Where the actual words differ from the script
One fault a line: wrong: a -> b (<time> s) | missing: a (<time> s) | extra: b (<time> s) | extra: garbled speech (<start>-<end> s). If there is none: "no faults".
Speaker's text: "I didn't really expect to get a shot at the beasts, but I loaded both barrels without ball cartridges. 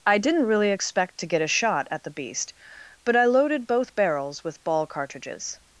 wrong: beasts -> beast (2.1 s)
wrong: without -> with (4.4 s)